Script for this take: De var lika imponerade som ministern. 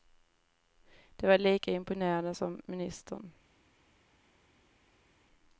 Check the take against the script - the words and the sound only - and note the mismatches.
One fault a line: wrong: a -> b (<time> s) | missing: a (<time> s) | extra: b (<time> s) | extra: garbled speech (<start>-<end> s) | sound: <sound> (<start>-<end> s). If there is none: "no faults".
no faults